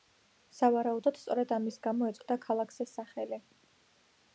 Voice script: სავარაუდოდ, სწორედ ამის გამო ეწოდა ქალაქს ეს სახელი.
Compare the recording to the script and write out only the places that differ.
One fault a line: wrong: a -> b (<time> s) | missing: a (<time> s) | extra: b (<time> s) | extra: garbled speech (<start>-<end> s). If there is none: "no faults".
no faults